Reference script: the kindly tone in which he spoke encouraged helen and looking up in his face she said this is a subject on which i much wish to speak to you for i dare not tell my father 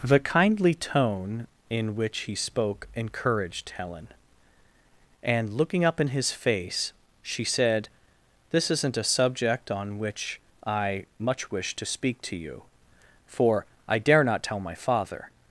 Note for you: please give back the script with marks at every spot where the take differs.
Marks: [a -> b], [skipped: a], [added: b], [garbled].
the kindly tone in which he spoke encouraged helen and looking up in his face she said this [is -> isn't] a subject on which i much wish to speak to you for i dare not tell my father